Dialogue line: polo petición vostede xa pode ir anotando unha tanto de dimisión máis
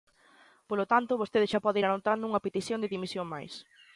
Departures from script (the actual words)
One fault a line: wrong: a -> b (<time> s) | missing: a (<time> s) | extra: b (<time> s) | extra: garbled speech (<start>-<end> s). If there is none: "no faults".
wrong: petición -> tanto (0.9 s)
wrong: tanto -> petición (2.5 s)